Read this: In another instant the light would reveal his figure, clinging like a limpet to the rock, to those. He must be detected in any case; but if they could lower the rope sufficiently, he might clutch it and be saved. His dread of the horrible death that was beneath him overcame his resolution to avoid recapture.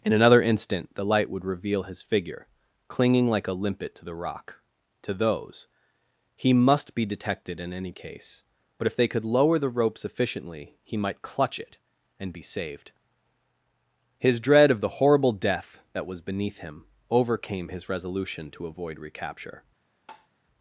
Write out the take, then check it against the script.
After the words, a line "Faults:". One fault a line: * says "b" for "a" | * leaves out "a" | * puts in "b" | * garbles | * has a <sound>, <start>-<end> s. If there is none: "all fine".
In another instant the light would reveal his figure, clinging like a limpet to the rock, to those. He must be detected in any case; but if they could lower the rope sufficiently, he might clutch it and be saved. His dread of the horrible death that was beneath him overcame his resolution to avoid recapture.
Faults:
* has a tap, 20.1-20.3 s